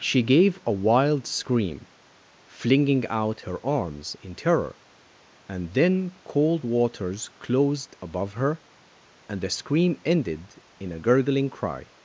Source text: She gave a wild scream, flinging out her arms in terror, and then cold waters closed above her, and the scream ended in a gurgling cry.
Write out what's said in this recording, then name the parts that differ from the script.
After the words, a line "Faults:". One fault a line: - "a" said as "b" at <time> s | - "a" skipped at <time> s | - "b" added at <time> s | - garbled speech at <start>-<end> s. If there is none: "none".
She gave a wild scream, flinging out her arms in terror, and then cold waters closed above her, and the scream ended in a gurgling cry.
Faults:
none